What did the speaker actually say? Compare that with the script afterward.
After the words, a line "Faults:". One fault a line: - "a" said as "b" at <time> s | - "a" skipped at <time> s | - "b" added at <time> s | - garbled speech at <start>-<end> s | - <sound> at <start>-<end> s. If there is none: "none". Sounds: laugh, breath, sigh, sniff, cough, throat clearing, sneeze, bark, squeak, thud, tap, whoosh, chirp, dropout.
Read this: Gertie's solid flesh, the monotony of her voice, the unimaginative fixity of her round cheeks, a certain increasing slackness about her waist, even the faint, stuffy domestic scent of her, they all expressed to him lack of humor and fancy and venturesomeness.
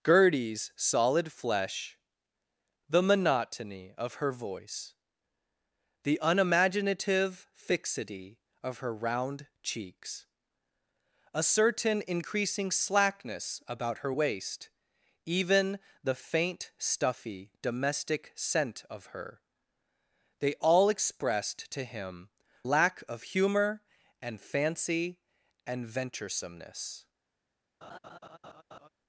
Gertie's solid flesh, the monotony of her voice, the unimaginative fixity of her round cheeks, a certain increasing slackness about her waist, even the faint, stuffy domestic scent of her, they all expressed to him lack of humor and fancy and venturesomeness.
Faults:
- laugh at 27.8-28.9 s